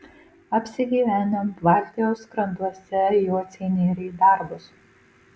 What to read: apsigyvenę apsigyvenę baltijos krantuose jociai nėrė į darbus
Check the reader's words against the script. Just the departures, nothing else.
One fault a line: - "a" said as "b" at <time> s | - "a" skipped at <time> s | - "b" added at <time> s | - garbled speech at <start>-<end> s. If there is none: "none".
- "apsigyvenę" skipped at 1.4 s